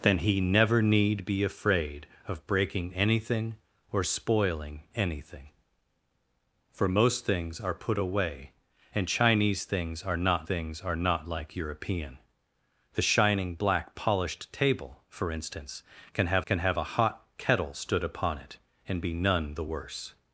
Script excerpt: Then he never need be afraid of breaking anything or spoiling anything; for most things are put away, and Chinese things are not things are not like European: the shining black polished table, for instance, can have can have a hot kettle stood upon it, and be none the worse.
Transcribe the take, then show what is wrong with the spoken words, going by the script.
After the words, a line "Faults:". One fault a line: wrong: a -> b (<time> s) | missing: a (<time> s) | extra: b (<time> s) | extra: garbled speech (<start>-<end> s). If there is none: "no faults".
Then he never need be afraid of breaking anything or spoiling anything; for most things are put away, and Chinese things are not things are not like European: the shining black polished table, for instance, can have can have a hot kettle stood upon it, and be none the worse.
Faults:
no faults